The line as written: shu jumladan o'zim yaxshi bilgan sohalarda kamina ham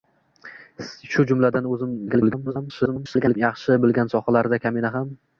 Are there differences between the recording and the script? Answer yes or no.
yes